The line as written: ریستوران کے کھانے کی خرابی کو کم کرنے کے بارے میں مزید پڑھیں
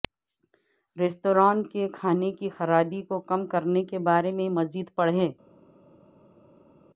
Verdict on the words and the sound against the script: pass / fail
pass